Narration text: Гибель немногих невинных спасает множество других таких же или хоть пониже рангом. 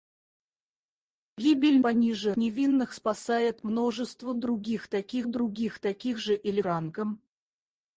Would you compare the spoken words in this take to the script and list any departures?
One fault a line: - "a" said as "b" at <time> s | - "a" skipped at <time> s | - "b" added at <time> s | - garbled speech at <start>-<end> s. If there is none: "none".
- "немногих" said as "пониже" at 1.8 s
- "других таких" added at 5.3 s
- "хоть пониже" skipped at 6.6 s